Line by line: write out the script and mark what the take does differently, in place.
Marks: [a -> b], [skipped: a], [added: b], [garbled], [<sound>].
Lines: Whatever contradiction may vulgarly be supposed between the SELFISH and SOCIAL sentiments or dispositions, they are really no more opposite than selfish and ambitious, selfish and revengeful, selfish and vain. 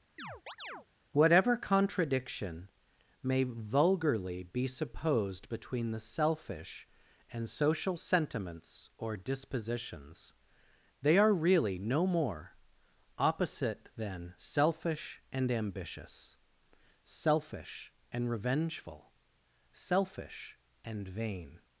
[chirp] Whatever contradiction may vulgarly be supposed between the SELFISH and SOCIAL sentiments or dispositions, they are really no more opposite than selfish and ambitious, selfish and revengeful, selfish and vain.